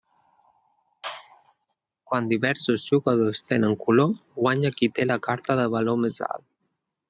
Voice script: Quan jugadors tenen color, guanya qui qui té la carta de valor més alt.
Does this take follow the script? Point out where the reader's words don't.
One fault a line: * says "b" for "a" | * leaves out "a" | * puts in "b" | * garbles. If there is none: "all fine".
* puts in "diversos"
* leaves out "qui"